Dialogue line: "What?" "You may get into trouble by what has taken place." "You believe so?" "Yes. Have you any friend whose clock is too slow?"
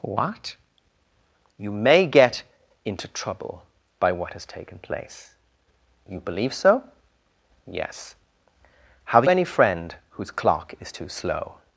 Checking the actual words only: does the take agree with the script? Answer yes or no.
no